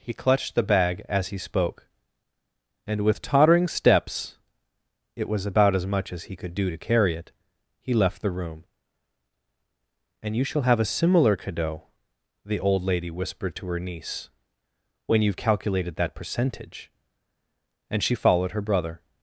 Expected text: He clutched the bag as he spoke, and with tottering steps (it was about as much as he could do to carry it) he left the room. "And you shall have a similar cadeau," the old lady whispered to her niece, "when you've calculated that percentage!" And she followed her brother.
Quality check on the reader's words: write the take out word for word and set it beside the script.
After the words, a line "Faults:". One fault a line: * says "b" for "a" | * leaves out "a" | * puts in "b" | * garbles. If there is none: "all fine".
He clutched the bag as he spoke, and with tottering steps (it was about as much as he could do to carry it) he left the room. "And you shall have a similar cadeau," the old lady whispered to her niece, "when you've calculated that percentage!" And she followed her brother.
Faults:
all fine